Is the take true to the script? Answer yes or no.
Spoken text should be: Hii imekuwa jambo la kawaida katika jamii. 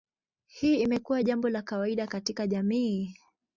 yes